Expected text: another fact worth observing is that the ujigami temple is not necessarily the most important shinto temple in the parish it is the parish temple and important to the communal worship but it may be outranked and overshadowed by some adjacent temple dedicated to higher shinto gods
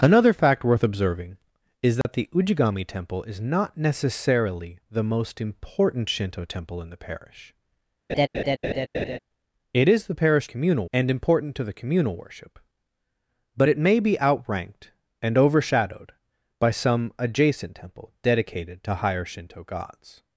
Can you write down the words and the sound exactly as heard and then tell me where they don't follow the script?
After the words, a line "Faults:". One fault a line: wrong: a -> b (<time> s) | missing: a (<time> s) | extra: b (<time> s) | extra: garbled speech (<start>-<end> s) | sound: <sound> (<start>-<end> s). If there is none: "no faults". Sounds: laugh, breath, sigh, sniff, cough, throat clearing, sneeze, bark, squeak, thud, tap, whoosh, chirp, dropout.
another fact worth observing is that the ujigami temple is not necessarily the most important shinto temple in the parish it is the parish communal and important to the communal worship but it may be outranked and overshadowed by some adjacent temple dedicated to higher shinto gods
Faults:
sound: dropout (2.0-2.0 s)
sound: laugh (8.1-9.2 s)
wrong: temple -> communal (10.5 s)